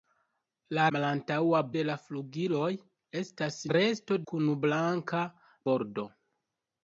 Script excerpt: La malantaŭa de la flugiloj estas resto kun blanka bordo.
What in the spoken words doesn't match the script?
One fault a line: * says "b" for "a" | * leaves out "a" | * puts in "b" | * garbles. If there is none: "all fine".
all fine